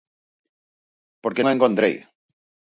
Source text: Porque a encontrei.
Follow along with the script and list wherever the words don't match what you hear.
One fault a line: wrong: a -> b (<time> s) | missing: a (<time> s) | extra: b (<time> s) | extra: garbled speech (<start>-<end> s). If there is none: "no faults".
no faults